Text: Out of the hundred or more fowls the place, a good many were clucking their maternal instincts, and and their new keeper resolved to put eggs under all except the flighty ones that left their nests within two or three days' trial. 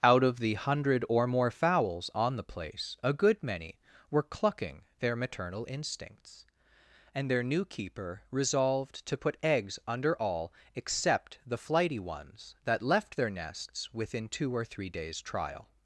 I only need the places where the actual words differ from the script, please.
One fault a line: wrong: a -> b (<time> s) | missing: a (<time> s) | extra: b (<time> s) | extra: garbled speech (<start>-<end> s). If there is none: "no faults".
extra: on (2.1 s)
missing: and (7.3 s)